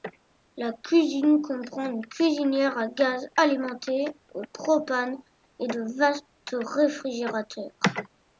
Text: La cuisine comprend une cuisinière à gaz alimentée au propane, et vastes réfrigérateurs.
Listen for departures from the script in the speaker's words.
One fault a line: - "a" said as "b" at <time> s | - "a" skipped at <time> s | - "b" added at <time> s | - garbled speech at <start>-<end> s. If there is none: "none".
- "de" added at 5.7 s